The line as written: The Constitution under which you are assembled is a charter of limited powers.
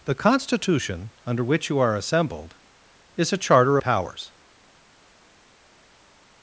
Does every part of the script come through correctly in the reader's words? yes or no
no